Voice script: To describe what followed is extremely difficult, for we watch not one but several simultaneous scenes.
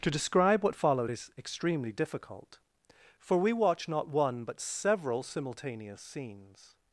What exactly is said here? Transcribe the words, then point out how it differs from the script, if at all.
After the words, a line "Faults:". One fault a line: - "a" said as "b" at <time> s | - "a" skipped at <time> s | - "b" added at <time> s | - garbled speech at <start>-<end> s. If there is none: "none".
To describe what followed is extremely difficult, for we watch not one but several simultaneous scenes.
Faults:
none